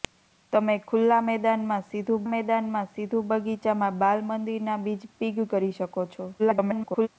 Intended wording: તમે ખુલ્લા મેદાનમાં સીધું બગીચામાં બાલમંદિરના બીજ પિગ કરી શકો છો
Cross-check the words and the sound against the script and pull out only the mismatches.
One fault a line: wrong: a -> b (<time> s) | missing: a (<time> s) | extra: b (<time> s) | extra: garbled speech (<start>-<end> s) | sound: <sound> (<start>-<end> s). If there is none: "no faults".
extra: મેદાનમાં સીધું (2.3 s)
extra: garbled speech (6.4-7.1 s)